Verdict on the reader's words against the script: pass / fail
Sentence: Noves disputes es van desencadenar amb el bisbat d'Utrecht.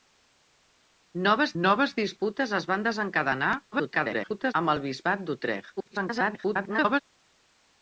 fail